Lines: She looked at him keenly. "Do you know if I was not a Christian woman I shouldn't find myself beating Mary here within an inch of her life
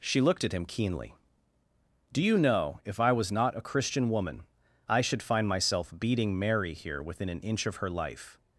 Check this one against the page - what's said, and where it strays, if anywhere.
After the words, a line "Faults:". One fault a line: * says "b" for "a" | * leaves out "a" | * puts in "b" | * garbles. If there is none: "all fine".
She looked at him keenly. "Do you know if I was not a Christian woman I should find myself beating Mary here within an inch of her life
Faults:
* says "should" for "shouldn't"